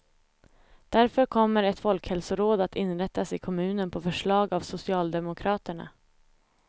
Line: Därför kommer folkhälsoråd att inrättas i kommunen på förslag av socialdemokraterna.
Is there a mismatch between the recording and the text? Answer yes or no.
yes